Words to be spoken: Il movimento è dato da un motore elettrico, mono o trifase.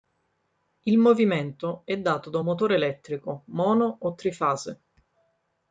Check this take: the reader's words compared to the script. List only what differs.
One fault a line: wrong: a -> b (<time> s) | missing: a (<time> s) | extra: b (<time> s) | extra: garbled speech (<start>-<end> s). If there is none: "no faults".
no faults